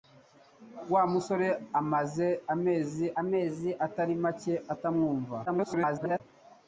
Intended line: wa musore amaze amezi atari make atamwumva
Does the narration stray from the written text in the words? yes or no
yes